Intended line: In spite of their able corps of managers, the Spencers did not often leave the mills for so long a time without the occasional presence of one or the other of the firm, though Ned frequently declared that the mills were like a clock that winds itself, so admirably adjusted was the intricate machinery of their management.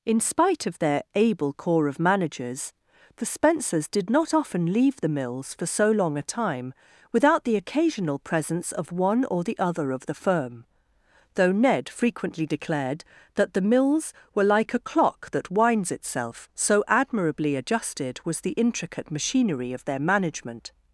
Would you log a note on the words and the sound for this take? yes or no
no